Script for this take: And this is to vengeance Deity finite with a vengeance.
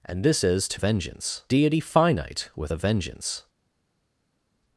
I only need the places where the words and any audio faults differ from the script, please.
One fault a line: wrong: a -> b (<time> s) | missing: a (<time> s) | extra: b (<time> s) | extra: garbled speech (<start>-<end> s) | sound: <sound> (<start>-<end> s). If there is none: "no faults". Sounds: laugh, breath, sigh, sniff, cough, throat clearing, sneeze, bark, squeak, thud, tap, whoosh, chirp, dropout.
no faults